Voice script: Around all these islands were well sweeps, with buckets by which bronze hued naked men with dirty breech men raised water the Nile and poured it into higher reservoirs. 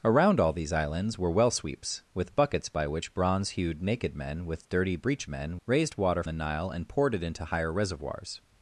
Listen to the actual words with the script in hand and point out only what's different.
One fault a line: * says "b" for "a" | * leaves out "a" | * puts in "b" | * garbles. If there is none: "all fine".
all fine